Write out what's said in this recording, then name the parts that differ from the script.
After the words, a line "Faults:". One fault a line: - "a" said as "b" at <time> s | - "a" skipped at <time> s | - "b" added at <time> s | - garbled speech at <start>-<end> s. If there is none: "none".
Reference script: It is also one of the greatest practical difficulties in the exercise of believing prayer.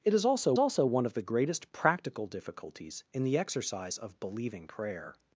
It is also also one of the greatest practical difficulties in the exercise of believing prayer.
Faults:
- "also" added at 0.6 s